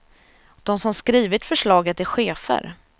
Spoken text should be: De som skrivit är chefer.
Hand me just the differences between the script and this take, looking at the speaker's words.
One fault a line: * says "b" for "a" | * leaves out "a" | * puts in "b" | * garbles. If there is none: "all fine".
* puts in "förslaget"